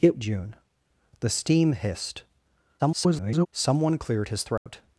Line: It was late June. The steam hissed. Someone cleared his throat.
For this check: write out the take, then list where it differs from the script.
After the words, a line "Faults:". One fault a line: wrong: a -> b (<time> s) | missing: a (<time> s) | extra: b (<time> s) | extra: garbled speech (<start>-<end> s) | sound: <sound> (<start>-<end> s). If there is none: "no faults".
It June. The steam hissed. [garbled] Someone cleared his throat.
Faults:
missing: was late (0.2 s)
extra: garbled speech (2.8-3.5 s)
sound: dropout (4.6-4.7 s)